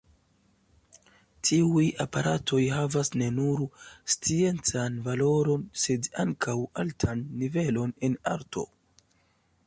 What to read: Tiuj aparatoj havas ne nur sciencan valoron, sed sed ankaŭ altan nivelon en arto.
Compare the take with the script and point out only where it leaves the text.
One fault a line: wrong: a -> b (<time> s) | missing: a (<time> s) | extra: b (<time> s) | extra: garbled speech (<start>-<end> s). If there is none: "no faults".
missing: sed (6.1 s)